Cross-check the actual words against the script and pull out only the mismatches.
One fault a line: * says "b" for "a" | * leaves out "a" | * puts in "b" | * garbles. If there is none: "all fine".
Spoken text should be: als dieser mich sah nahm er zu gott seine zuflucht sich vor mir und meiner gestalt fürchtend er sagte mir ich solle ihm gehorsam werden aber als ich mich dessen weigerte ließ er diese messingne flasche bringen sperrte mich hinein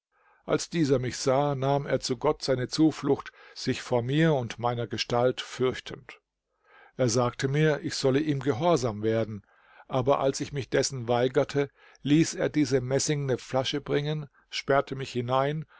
all fine